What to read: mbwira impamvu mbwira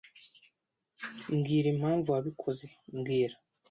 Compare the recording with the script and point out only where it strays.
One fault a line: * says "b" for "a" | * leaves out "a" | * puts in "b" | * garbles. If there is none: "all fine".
* puts in "wabikoze"